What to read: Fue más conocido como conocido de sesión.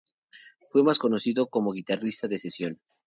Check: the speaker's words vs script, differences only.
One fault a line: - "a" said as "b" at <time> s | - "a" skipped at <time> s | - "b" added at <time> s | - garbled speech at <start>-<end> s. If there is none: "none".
- "conocido" said as "guitarrista" at 1.7 s